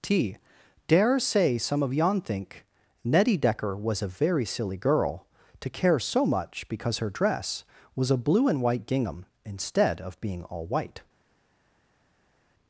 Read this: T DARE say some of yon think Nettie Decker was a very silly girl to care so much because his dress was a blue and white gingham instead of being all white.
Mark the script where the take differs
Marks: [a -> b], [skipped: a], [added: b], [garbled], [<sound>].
T DARE say some of yon think Nettie Decker was a very silly girl to care so much because [his -> her] dress was a blue and white gingham instead of being all white.